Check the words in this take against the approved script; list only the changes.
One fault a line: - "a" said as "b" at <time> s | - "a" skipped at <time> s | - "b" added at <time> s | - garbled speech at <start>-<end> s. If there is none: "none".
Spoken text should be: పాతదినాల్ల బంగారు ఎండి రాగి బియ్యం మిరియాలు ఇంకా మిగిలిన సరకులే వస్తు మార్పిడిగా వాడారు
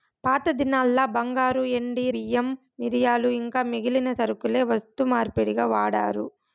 - "రాగి" skipped at 2.0 s